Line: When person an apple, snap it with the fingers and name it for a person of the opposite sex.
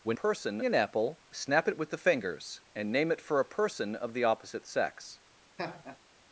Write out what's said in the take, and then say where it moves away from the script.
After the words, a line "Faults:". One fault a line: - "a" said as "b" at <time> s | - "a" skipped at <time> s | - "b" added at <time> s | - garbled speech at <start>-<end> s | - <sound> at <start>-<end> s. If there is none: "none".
When person an apple, snap it with the fingers and name it for a person of the opposite sex.
Faults:
- laugh at 5.6-6.0 s